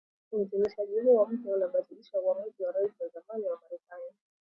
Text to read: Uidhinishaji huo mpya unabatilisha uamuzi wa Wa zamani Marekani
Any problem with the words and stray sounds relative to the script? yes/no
yes